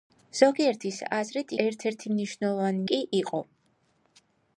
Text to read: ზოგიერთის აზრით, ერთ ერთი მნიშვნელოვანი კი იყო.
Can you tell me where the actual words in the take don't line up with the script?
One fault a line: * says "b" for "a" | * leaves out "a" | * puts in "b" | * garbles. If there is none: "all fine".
all fine